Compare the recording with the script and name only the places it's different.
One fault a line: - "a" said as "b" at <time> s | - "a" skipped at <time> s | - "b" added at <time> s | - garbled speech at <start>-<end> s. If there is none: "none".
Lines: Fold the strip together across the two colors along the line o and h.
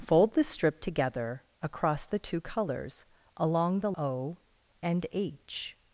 - "line" skipped at 3.9 s